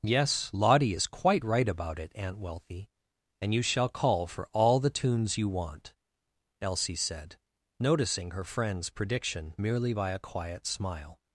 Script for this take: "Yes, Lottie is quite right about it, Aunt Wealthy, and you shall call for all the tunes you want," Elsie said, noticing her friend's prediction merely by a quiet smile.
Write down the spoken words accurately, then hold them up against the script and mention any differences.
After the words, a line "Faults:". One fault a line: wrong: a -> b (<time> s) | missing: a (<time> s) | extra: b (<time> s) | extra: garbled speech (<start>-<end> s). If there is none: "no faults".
"Yes, Lottie is quite right about it, Aunt Wealthy, and you shall call for all the tunes you want," Elsie said, noticing her friend's prediction merely by a quiet smile.
Faults:
no faults